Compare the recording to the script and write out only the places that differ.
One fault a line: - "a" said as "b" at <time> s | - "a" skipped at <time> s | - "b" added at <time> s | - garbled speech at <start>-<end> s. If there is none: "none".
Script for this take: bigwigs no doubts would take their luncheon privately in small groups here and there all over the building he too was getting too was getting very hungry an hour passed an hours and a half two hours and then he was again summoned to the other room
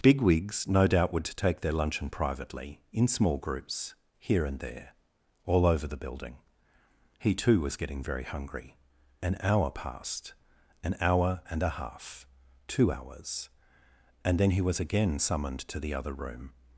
- "doubts" said as "doubt" at 0.9 s
- "too was getting" skipped at 8.0 s
- "hours" said as "hour" at 11.0 s